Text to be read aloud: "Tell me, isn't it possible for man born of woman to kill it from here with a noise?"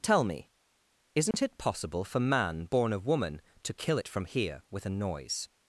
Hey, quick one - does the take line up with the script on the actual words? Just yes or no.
yes